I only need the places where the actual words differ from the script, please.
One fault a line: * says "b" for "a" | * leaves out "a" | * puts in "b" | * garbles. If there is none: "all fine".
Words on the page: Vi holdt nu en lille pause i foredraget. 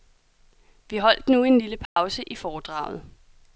all fine